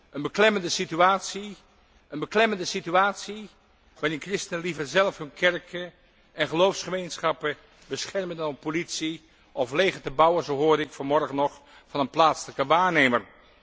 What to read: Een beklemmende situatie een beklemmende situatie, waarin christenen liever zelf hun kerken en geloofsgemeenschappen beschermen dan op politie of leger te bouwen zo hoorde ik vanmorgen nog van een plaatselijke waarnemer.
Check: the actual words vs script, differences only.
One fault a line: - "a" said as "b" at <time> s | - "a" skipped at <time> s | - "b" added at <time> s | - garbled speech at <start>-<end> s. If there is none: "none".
none